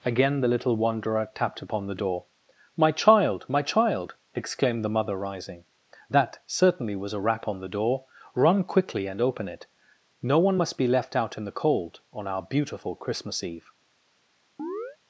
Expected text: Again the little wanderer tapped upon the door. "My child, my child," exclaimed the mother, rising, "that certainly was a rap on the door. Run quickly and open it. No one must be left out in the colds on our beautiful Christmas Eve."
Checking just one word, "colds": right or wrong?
wrong